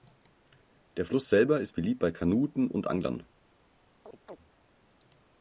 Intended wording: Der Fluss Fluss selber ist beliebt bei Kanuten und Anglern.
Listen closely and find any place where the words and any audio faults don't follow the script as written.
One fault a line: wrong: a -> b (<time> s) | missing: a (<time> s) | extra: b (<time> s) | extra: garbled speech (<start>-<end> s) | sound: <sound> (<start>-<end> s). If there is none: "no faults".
missing: Fluss (1.3 s)
sound: chirp (4.0-4.4 s)